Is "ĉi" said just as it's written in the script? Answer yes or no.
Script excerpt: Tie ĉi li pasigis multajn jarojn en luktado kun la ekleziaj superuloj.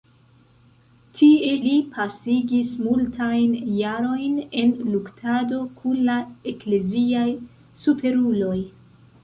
no